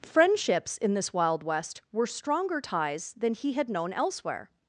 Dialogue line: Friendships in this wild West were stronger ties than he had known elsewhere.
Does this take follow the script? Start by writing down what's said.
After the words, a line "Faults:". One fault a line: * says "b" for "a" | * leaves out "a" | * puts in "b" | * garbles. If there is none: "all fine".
Friendships in this wild West were stronger ties than he had known elsewhere.
Faults:
all fine